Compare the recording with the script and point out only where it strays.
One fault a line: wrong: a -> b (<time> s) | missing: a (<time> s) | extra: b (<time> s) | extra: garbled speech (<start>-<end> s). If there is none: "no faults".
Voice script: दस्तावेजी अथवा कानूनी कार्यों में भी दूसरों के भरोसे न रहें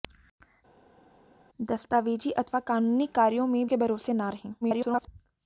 missing: भी दूसरों (3.7 s)
extra: garbled speech (4.6-5.1 s)